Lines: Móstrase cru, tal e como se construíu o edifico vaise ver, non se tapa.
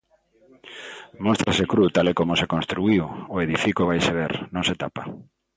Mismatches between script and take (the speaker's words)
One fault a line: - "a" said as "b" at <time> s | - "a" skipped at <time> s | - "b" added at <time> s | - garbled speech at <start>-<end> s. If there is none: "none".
none